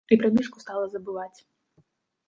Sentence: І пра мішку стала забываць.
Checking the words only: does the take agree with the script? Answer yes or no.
yes